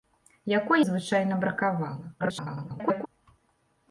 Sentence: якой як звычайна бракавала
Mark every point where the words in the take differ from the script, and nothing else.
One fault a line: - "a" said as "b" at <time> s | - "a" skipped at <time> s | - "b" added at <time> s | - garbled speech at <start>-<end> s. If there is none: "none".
- "як" skipped at 0.8 s
- garbled speech at 2.2-3.1 s